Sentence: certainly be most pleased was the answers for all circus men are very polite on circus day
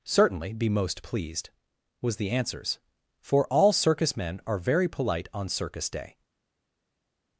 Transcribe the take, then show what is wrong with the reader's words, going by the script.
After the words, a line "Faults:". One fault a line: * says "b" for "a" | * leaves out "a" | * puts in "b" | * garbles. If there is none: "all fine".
certainly be most pleased was the answers for all circus men are very polite on circus day
Faults:
all fine